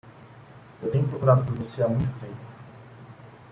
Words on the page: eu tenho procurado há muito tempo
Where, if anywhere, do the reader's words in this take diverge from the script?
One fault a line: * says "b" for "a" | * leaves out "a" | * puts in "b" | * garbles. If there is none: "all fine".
* puts in "por você"